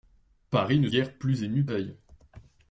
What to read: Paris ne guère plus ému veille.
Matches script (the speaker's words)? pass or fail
pass